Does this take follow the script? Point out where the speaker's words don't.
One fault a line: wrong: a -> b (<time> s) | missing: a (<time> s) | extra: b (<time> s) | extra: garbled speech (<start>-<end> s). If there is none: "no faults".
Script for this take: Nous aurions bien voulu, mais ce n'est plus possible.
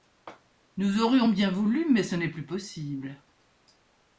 no faults